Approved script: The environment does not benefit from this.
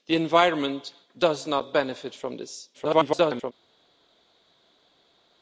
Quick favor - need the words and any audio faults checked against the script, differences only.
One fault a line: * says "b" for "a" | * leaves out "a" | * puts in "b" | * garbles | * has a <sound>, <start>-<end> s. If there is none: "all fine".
* garbles